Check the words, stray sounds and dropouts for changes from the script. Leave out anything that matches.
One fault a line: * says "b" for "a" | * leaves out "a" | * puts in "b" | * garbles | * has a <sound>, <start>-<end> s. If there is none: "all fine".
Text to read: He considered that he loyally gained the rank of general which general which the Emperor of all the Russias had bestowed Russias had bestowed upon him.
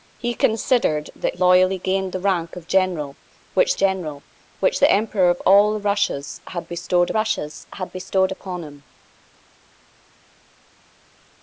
all fine